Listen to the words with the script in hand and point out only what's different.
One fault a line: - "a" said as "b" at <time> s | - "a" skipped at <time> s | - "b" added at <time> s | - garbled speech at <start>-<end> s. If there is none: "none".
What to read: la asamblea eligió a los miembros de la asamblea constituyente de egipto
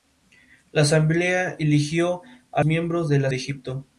- "los" skipped at 2.6 s
- "asamblea constituyente" skipped at 3.3 s